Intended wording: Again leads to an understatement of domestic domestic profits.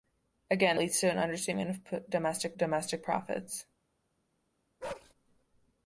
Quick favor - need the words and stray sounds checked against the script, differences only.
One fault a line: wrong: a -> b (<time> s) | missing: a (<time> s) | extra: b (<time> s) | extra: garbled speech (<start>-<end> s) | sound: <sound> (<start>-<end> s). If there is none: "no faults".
sound: bark (4.8-5.1 s)